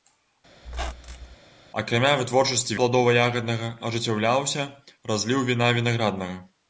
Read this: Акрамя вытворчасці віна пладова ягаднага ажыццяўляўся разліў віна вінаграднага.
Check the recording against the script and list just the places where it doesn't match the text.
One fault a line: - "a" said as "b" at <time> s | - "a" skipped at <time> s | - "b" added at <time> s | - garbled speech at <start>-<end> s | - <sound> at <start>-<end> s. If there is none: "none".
- squeak at 0.6-1.4 s
- "віна" skipped at 2.8 s